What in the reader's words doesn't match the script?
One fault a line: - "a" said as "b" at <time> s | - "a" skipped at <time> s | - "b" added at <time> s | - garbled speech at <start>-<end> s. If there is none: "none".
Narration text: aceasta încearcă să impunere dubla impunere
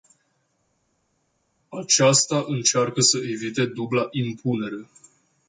- "impunere" said as "evite" at 3.2 s